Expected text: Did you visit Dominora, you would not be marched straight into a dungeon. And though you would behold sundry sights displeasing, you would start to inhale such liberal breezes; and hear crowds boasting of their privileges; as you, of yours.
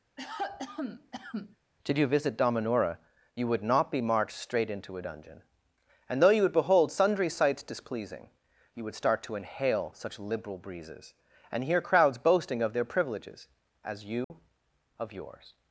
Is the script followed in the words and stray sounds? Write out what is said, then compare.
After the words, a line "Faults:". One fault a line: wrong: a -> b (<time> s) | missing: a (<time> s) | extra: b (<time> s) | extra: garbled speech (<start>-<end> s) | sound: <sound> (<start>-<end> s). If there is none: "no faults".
Did you visit Dominora, you would not be marched straight into a dungeon. And though you would behold sundry sights displeasing, you would start to inhale such liberal breezes; and hear crowds boasting of their privileges; as you, of yours.
Faults:
sound: cough (0.2-1.6 s)
sound: dropout (14.2-14.3 s)